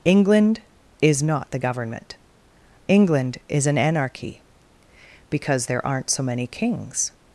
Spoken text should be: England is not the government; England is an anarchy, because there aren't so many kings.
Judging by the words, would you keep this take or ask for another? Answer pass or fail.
pass